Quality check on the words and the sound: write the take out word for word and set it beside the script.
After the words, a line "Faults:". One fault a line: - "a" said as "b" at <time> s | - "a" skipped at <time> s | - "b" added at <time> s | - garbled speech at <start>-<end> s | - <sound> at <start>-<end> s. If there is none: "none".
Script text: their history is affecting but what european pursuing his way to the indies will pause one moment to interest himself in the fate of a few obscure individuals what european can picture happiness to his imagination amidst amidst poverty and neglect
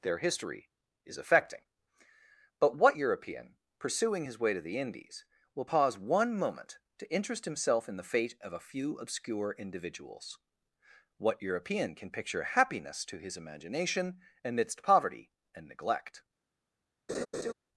their history is affecting but what european pursuing his way to the indies will pause one moment to interest himself in the fate of a few obscure individuals what european can picture happiness to his imagination amidst poverty and neglect
Faults:
- "amidst" skipped at 14.8 s
- laugh at 17.1-17.5 s